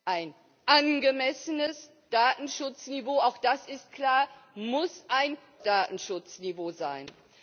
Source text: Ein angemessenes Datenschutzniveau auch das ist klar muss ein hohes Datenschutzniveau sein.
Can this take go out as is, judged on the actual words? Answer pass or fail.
fail